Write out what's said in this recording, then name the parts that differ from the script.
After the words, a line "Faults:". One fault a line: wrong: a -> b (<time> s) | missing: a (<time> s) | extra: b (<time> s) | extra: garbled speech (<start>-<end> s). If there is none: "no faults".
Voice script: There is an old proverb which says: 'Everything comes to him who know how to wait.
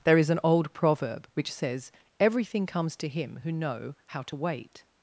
There is an old proverb which says: 'Everything comes to him who know how to wait.
Faults:
no faults